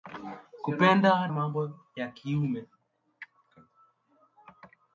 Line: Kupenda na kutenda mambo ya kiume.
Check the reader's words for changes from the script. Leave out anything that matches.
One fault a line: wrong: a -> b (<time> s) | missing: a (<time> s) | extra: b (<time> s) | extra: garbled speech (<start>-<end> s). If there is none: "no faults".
missing: na kutenda (1.3 s)